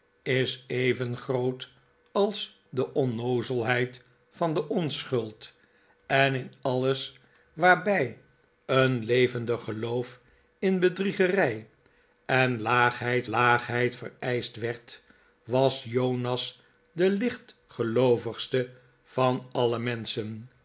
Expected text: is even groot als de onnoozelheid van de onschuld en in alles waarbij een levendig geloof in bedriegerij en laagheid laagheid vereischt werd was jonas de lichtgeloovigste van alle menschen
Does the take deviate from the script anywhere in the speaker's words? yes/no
no